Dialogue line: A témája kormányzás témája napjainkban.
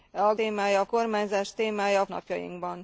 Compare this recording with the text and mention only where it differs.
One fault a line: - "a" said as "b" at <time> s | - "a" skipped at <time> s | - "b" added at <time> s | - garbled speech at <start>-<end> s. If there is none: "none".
none